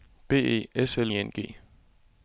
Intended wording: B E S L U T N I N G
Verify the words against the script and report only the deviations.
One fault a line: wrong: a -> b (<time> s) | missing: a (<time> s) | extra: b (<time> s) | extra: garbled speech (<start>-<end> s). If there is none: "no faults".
missing: U T N (1.1 s)